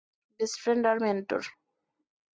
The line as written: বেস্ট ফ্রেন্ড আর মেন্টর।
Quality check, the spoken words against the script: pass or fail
pass